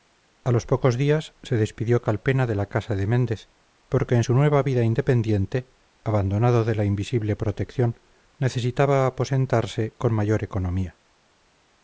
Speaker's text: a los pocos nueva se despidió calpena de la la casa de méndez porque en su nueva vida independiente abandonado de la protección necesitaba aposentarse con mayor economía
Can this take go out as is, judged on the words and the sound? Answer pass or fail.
fail